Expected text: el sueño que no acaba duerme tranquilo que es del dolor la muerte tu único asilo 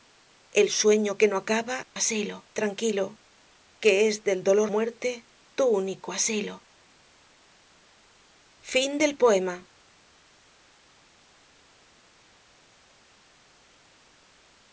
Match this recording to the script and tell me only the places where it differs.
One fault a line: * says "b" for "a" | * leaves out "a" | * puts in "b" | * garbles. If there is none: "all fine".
* says "asilo" for "duerme"
* leaves out "la"